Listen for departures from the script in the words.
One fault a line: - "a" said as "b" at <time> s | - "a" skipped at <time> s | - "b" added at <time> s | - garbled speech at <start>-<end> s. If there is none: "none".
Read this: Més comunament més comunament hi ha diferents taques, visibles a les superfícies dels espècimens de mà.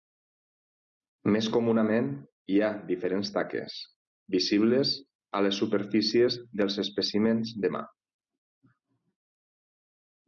- "més comunament" skipped at 2.1 s